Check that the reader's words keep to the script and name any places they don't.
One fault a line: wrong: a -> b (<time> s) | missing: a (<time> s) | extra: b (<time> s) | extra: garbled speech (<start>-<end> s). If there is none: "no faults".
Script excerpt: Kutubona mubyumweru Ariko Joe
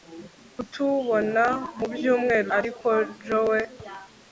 no faults